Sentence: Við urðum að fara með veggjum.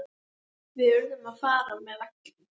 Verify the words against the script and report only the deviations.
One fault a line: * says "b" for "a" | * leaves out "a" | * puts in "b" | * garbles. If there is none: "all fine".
all fine